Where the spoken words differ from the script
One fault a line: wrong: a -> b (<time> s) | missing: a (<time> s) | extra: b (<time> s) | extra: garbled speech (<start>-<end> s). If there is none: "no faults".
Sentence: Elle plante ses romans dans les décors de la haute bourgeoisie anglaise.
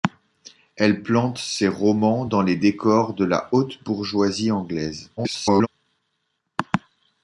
extra: garbled speech (5.2-5.7 s)